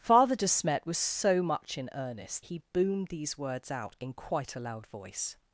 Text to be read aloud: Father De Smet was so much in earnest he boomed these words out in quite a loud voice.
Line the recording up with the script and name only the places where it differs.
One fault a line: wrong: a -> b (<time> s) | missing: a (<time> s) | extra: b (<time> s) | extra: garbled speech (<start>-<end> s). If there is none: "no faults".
no faults